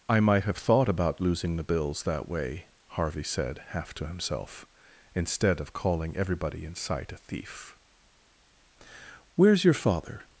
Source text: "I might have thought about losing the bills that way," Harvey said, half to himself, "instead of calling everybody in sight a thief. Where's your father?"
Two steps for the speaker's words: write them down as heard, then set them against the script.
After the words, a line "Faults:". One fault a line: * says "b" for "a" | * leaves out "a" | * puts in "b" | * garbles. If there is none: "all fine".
"I might have thought about losing the bills that way," Harvey said, half to himself, "instead of calling everybody in sight a thief. Where's your father?"
Faults:
all fine